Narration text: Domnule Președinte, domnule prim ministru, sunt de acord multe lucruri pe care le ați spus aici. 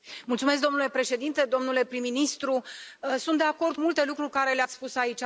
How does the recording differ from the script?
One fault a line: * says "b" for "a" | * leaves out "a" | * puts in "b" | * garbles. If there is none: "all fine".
all fine